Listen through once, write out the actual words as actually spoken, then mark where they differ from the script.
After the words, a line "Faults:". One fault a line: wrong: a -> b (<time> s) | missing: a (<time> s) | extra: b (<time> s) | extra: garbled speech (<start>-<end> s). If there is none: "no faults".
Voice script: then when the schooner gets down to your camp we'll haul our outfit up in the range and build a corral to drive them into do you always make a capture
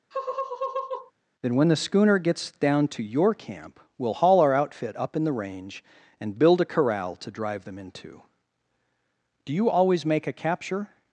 then when the schooner gets down to your camp we'll haul our outfit up in the range and build a corral to drive them into do you always make a capture
Faults:
no faults